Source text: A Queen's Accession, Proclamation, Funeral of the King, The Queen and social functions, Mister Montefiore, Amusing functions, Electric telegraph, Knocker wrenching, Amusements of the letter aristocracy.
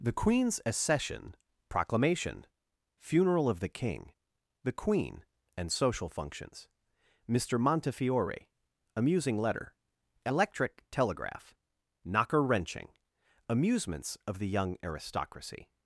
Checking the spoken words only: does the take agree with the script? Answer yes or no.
no